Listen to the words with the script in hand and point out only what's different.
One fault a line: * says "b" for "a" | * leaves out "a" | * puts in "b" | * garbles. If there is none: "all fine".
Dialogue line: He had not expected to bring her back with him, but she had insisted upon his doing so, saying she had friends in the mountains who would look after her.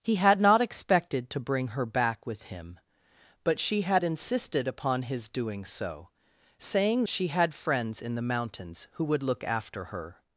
all fine